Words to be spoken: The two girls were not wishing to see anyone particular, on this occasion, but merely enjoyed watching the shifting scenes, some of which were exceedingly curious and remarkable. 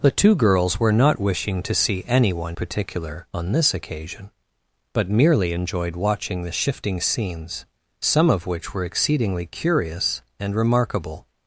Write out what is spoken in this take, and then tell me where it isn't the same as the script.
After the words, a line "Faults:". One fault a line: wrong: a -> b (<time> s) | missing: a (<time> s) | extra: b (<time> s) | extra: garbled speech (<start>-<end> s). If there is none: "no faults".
The two girls were not wishing to see anyone particular, on this occasion, but merely enjoyed watching the shifting scenes, some of which were exceedingly curious and remarkable.
Faults:
no faults